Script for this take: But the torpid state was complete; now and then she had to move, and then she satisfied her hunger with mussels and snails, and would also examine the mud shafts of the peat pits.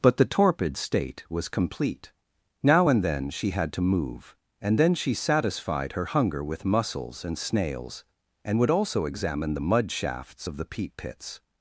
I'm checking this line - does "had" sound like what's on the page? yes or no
yes